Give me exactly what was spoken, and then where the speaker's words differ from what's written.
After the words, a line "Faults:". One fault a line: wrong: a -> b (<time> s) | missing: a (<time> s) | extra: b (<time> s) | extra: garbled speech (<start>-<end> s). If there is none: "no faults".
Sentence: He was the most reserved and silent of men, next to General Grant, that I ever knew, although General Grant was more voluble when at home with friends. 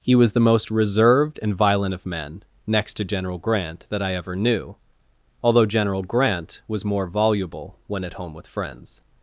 He was the most reserved and violent of men, next to General Grant, that I ever knew, although General Grant was more voluble when at home with friends.
Faults:
wrong: silent -> violent (1.6 s)